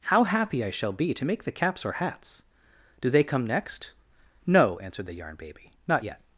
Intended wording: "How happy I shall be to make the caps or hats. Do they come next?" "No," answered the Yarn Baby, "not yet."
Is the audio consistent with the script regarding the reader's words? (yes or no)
yes